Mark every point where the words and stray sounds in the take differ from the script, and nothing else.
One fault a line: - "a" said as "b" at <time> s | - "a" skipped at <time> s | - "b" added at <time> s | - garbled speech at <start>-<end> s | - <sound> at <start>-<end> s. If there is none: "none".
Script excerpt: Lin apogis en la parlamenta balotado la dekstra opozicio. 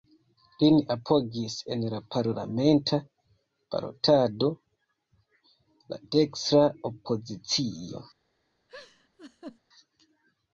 - laugh at 8.7-9.6 s